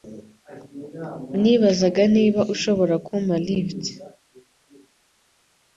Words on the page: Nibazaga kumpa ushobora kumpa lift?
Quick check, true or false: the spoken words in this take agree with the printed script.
false